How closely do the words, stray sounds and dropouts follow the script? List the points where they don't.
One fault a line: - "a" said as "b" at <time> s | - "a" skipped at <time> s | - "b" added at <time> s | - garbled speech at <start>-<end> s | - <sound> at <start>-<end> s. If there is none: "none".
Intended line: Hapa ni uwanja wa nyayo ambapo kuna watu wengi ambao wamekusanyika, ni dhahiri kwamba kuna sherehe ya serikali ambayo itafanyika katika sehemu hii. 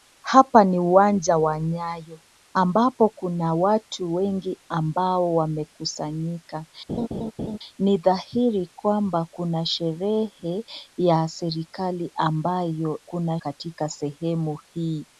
- laugh at 6.9-7.6 s
- "itafanyika" said as "kuna" at 13.1 s